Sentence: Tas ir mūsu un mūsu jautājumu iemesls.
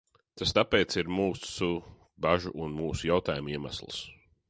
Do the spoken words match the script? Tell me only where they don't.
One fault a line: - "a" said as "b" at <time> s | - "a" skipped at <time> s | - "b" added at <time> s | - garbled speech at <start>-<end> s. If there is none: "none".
- "tāpēc" added at 0.6 s
- "bažu" added at 2.3 s